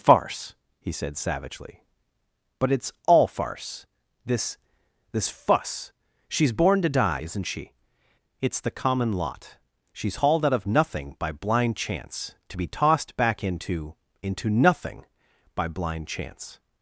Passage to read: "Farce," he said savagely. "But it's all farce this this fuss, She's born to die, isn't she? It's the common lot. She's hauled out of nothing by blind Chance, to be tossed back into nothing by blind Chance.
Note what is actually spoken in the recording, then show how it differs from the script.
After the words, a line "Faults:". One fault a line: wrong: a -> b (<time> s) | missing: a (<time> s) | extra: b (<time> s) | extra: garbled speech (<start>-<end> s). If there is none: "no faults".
"Farce," he said savagely. "But it's all farce this this fuss, She's born to die, isn't she? It's the common lot. She's hauled out of nothing by blind Chance, to be tossed back into into nothing by blind Chance.
Faults:
extra: into (14.2 s)